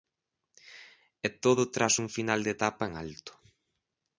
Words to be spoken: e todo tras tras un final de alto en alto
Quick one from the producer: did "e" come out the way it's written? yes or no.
yes